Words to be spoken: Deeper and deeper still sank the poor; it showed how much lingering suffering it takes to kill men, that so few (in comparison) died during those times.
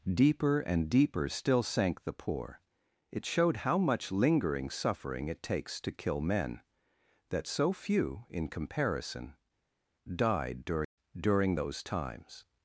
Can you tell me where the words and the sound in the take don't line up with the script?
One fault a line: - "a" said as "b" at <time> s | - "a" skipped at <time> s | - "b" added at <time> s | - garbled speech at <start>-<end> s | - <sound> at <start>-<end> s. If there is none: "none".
- "during" added at 11.2 s